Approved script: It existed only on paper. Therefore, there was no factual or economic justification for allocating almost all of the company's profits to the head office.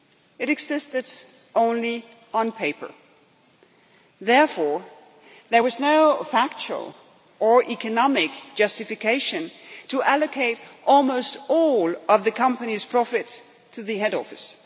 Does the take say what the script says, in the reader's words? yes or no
yes